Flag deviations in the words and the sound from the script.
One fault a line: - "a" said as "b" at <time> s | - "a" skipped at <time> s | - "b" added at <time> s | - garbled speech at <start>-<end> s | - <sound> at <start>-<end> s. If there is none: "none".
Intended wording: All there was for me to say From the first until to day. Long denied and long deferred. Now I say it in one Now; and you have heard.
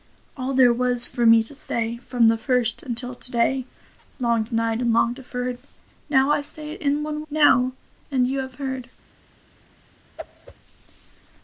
- whoosh at 10.2-10.6 s